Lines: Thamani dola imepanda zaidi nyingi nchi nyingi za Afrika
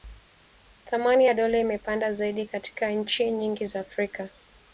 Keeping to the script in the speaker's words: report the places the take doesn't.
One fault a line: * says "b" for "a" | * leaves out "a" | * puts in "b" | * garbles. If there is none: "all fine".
* puts in "ya"
* says "katika" for "nyingi"